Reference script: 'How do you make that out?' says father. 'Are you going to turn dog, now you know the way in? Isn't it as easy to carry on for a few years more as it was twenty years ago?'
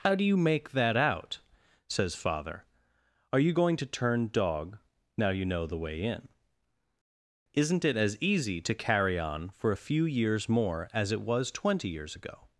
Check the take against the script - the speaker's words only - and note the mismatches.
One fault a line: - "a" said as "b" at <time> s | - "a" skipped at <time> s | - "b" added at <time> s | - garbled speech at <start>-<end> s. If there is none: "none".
none